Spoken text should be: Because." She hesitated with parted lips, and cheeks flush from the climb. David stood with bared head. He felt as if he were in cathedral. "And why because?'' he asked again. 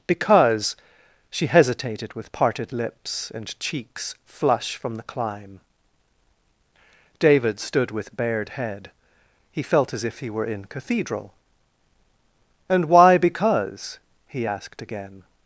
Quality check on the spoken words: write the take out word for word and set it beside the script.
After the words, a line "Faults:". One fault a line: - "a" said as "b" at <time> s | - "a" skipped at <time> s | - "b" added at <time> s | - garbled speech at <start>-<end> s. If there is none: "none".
Because." She hesitated with parted lips, and cheeks flush from the climb. David stood with bared head. He felt as if he were in cathedral. "And why because?'' he asked again.
Faults:
none